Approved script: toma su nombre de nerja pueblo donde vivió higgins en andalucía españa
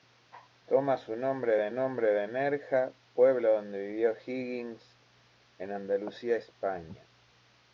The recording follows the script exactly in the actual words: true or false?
false